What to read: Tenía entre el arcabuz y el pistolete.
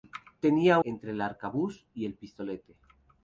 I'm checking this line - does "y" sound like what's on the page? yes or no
yes